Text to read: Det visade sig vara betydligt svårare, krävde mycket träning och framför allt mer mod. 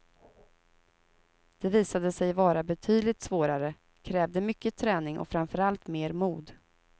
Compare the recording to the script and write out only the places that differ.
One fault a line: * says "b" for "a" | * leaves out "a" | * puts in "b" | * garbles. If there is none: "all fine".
all fine